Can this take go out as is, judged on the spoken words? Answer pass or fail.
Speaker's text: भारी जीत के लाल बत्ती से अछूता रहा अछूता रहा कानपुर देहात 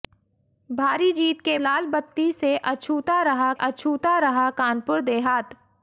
pass